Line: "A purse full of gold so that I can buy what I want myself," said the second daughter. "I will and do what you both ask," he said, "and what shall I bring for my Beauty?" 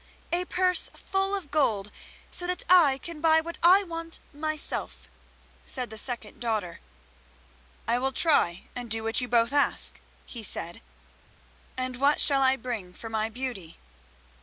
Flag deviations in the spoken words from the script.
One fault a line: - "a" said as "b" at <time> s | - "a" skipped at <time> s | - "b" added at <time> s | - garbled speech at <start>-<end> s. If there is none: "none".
- "try" added at 8.1 s